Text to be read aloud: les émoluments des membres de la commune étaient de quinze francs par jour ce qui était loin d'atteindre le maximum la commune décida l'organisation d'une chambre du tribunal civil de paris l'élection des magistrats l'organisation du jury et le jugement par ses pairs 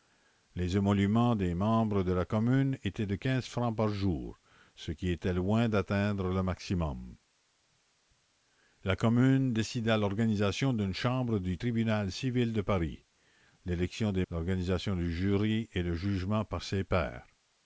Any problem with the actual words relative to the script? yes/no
yes